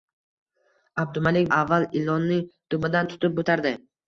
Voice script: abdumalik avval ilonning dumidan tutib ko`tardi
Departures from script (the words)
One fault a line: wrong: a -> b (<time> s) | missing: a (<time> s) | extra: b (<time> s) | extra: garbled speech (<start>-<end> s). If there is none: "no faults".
no faults